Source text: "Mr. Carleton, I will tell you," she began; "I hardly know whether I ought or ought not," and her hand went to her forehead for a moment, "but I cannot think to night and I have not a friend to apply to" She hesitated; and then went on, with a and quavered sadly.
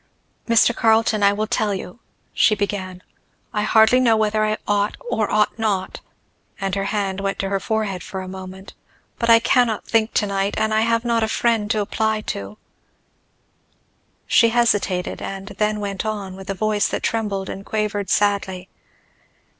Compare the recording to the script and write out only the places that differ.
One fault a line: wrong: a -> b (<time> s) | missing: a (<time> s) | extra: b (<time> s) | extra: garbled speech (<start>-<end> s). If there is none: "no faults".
extra: voice that trembled (16.5 s)